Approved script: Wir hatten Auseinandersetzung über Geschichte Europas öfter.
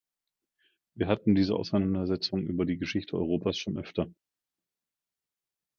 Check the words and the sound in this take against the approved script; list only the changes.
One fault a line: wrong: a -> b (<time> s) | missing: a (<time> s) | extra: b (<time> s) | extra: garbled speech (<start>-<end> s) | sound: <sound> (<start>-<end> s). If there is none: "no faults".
extra: diese (1.4 s)
extra: die (2.6 s)
extra: schon (3.6 s)